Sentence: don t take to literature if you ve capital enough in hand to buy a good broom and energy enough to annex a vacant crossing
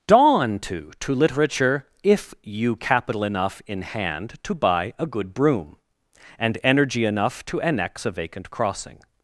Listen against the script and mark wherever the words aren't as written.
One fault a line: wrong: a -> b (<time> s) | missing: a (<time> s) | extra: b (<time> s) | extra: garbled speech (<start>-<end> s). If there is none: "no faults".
wrong: don t take -> dawn to (0.1 s)
missing: ve (2.8 s)